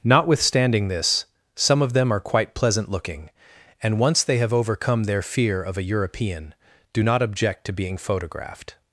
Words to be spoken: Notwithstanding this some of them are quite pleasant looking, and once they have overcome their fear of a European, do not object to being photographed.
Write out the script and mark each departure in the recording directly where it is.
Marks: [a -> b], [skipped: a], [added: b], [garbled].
Notwithstanding this some of them are quite pleasant looking, and once they have overcome their fear of a European, do not object to being photographed.